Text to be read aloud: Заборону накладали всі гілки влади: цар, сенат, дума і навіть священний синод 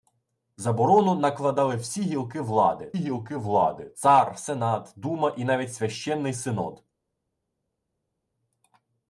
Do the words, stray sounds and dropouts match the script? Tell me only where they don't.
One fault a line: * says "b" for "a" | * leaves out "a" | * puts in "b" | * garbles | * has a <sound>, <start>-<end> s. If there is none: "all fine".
* puts in "гілки влади"